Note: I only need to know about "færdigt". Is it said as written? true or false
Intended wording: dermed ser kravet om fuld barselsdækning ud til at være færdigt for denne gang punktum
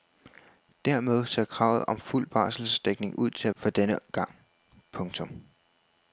false